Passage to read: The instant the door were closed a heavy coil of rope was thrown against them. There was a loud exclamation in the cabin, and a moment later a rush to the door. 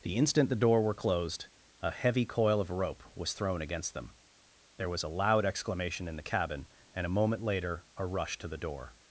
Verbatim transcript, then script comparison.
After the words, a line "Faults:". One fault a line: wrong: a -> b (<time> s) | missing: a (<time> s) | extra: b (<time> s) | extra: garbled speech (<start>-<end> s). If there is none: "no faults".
The instant the door were closed a heavy coil of rope was thrown against them. There was a loud exclamation in the cabin, and a moment later a rush to the door.
Faults:
no faults